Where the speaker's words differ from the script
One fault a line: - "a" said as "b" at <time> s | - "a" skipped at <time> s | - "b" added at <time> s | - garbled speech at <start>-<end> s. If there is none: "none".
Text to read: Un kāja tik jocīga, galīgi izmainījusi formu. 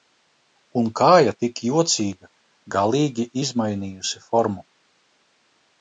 none